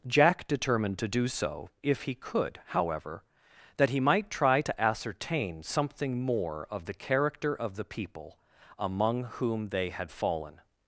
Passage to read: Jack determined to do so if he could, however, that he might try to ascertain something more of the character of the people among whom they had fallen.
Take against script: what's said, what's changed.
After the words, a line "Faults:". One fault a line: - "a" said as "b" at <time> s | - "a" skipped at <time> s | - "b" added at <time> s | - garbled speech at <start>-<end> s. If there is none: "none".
Jack determined to do so if he could, however, that he might try to ascertain something more of the character of the people among whom they had fallen.
Faults:
none